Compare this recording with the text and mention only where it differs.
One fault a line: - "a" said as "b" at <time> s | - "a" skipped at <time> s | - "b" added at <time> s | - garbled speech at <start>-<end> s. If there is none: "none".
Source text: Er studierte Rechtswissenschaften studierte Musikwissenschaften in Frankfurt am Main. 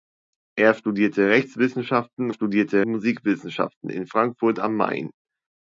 none